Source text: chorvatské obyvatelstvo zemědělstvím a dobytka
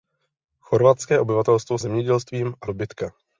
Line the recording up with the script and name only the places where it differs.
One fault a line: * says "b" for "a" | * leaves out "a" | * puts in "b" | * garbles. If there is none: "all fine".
all fine